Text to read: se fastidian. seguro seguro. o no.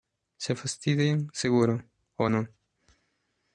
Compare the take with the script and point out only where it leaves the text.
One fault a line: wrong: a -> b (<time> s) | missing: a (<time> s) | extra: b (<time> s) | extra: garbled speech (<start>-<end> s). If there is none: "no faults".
missing: seguro (1.8 s)